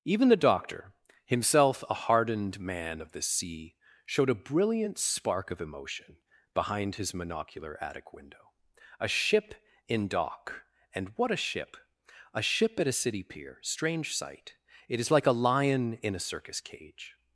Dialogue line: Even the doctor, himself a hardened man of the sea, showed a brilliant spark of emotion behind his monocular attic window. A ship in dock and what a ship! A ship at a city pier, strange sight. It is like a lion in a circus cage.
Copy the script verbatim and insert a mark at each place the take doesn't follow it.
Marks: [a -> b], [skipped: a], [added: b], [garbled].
Even the doctor, himself a hardened man of the sea, showed a brilliant spark of emotion behind his monocular attic window. A ship in dock and what a ship! A ship at a city pier, strange sight. It is like a lion in a circus cage.